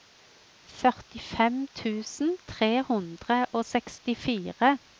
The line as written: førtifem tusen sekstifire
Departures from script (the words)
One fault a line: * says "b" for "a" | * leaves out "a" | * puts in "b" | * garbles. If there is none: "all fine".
* puts in "tre hundre og"